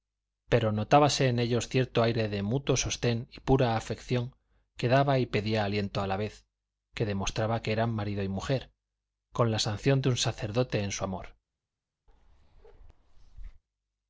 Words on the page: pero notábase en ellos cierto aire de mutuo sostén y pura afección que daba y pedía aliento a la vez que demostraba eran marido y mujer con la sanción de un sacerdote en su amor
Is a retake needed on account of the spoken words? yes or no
yes